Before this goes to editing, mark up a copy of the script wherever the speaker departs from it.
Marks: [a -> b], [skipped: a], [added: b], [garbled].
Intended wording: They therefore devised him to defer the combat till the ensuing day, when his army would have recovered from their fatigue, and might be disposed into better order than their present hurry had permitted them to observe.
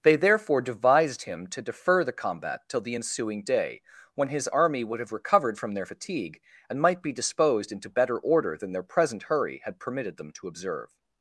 They therefore devised him to defer the combat till the ensuing day, when his army would have recovered from their fatigue, and might be disposed into better order than their present hurry had permitted them to observe.